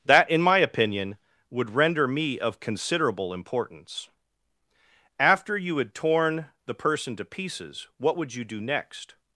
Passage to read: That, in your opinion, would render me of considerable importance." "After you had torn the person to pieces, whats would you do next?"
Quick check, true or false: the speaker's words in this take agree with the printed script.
false